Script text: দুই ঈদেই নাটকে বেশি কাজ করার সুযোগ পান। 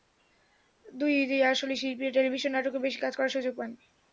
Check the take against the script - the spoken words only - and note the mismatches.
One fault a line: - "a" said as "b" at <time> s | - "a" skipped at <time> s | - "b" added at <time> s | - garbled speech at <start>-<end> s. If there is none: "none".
- "আসলে শিল্পীরা টেলিভিশন" added at 1.5 s